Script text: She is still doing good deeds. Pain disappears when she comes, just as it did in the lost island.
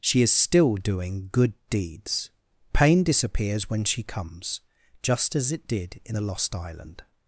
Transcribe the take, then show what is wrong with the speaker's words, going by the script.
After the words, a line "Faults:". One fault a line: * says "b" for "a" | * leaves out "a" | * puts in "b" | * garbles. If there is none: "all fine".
She is still doing good deeds. Pain disappears when she comes, just as it did in the lost island.
Faults:
all fine